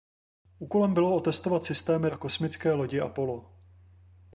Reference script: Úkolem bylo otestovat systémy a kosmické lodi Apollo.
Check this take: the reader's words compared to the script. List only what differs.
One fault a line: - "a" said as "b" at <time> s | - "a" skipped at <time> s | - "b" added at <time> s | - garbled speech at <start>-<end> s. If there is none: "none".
none